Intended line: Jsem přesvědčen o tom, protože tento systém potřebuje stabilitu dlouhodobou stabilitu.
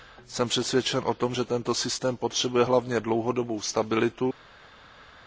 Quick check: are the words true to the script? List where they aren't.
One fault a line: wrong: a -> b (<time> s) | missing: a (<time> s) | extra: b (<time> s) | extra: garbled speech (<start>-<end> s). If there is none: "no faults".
wrong: protože -> že (1.3 s)
wrong: stabilitu -> hlavně (2.6 s)